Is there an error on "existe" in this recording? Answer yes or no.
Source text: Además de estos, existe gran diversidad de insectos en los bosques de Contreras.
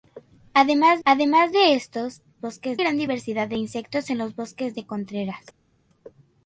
yes